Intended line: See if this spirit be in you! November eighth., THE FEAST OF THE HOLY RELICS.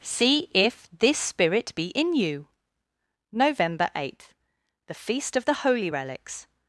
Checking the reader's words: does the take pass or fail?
pass